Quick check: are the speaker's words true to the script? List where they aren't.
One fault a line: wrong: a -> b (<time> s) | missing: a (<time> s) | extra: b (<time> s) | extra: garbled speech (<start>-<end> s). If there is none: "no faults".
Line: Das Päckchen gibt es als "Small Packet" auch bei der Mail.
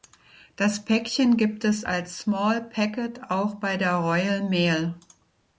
extra: Royal (3.9 s)